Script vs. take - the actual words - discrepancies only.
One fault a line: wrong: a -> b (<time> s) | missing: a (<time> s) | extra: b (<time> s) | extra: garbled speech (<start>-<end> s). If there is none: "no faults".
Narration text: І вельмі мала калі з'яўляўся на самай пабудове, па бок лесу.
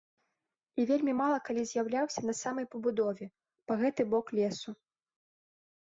extra: гэты (3.8 s)